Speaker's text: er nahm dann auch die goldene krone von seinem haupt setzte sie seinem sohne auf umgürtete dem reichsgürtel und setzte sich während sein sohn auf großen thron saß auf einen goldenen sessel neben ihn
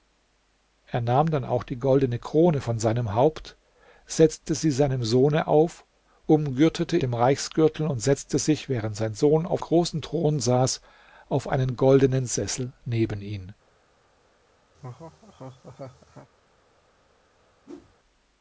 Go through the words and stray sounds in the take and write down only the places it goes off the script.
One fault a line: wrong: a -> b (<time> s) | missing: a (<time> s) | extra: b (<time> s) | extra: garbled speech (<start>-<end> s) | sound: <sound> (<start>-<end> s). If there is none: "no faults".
sound: laugh (14.7-16.3 s)
sound: whoosh (17.6-18.0 s)